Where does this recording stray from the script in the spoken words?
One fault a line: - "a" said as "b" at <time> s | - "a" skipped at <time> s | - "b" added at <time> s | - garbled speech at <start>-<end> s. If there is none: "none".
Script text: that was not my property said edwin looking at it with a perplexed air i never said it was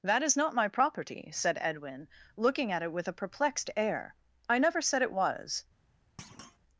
- "was" said as "is" at 0.2 s